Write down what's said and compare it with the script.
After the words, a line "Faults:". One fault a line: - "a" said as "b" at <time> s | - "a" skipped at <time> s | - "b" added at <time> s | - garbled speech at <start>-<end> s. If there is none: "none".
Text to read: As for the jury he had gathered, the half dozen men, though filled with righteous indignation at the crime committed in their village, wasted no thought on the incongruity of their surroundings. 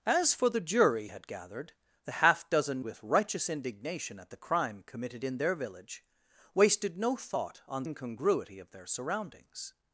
As for the jury had gathered, the half dozen with righteous indignation at the crime committed in their village, wasted no thought on incongruity of their surroundings.
Faults:
- "he" skipped at 1.1 s
- "men though filled" skipped at 2.8 s
- "the" skipped at 7.8 s